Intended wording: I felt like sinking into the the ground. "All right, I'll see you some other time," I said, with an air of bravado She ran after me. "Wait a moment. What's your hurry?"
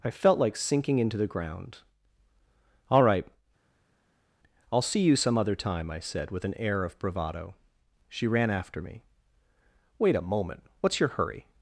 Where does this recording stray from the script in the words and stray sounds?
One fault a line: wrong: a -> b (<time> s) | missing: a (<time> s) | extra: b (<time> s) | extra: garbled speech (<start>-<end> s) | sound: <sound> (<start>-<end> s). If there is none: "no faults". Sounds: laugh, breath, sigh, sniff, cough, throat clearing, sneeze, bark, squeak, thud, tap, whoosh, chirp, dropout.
missing: the (1.3 s)